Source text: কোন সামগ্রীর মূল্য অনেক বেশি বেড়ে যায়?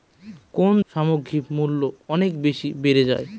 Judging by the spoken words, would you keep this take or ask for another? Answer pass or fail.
pass